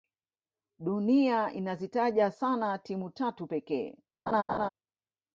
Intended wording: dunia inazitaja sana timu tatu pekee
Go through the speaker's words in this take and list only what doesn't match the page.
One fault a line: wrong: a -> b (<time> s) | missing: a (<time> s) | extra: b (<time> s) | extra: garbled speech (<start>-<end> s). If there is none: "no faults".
no faults